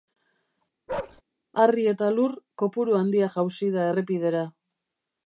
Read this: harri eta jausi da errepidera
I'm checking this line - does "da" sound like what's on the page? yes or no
yes